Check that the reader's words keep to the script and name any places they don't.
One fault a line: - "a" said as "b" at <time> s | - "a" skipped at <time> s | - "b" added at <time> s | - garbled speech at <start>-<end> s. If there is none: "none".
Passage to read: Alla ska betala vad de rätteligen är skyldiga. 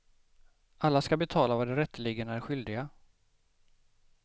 none